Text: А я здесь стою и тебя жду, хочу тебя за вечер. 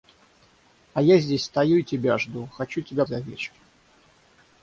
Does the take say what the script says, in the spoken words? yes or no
yes